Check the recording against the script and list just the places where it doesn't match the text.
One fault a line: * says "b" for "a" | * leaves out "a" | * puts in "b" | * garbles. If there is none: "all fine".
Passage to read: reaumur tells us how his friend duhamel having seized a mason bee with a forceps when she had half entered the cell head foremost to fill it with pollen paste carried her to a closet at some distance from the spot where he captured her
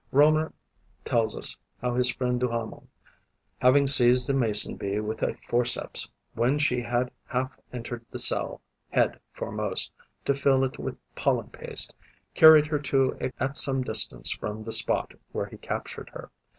* leaves out "closet"